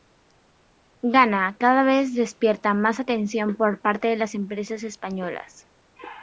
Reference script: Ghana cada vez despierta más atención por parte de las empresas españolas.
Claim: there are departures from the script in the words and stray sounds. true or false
false